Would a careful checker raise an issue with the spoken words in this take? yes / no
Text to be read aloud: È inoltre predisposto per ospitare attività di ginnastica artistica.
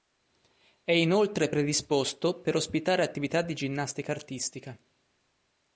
no